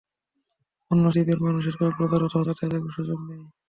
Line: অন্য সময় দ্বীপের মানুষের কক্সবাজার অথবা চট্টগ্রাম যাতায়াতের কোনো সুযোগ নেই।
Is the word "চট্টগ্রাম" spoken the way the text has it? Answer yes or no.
no